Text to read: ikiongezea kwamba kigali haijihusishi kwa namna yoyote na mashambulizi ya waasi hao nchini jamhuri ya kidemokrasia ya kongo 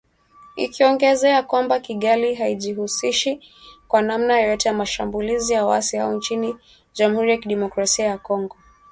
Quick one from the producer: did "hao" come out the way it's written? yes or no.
yes